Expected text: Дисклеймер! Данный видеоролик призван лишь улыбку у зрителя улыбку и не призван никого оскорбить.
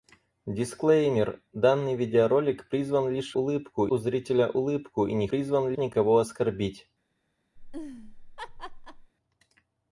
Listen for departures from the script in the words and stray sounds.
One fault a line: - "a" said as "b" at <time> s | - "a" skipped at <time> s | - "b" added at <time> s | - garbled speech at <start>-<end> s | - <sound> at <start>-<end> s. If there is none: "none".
- laugh at 7.6-9.1 s